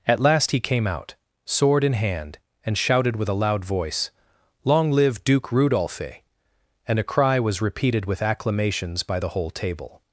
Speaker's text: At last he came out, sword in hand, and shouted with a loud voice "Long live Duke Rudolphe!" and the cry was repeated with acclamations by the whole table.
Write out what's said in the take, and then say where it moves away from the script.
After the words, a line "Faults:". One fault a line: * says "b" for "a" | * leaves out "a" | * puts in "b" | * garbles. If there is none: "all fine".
At last he came out, sword in hand, and shouted with a loud voice "Long live Duke Rudolphe!" and a cry was repeated with acclamations by the whole table.
Faults:
* says "a" for "the"